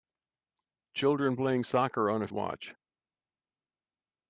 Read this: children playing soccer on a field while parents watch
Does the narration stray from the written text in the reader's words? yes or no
yes